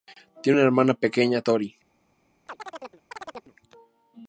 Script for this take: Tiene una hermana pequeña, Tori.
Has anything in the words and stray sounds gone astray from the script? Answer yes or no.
yes